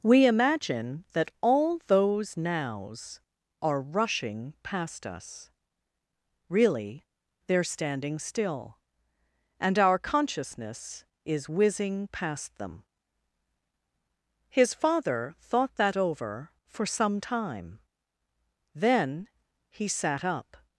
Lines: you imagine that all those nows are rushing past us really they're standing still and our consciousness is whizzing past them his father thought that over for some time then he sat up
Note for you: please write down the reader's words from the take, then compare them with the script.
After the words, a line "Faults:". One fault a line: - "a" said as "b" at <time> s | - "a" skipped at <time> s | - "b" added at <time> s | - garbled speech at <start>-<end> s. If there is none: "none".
we imagine that all those nows are rushing past us really they're standing still and our consciousness is whizzing past them his father thought that over for some time then he sat up
Faults:
- "you" said as "we" at 0.0 s